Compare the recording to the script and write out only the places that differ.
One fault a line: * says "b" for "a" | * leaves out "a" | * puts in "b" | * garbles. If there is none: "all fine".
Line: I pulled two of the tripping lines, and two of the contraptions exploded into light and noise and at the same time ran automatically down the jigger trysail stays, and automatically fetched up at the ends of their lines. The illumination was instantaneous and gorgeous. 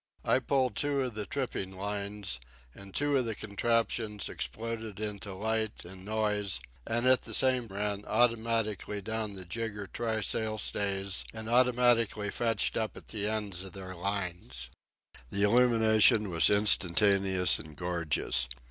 * leaves out "time"